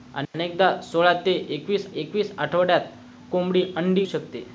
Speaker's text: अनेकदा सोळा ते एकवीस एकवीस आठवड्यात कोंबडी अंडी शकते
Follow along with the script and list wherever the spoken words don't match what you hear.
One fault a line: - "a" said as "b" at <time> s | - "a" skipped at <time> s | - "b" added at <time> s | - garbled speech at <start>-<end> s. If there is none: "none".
none